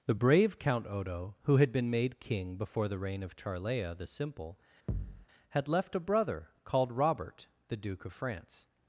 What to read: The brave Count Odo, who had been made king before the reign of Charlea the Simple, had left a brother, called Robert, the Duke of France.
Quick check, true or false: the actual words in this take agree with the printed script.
true